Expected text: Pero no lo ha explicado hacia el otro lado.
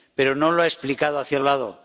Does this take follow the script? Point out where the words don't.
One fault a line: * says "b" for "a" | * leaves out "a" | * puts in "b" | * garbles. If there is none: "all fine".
* leaves out "otro"